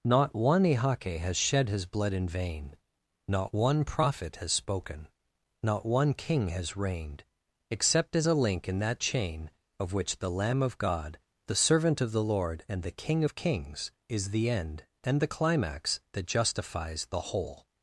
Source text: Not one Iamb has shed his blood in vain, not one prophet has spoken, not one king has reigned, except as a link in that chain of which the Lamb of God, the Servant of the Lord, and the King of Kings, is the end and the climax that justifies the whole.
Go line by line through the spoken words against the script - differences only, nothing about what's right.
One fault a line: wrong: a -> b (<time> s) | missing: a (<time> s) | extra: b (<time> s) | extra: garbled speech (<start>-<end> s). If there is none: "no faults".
wrong: Iamb -> Ihake (0.6 s)